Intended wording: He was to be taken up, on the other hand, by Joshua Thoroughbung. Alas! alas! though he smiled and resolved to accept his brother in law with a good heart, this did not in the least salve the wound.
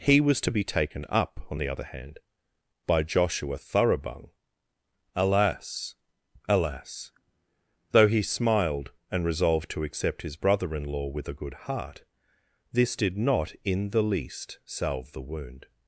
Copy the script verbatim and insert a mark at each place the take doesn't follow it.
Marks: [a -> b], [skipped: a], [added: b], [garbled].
He was to be taken up, on the other hand, by Joshua Thoroughbung. Alas! alas! though he smiled and resolved to accept his brother in law with a good heart, this did not in the least salve the wound.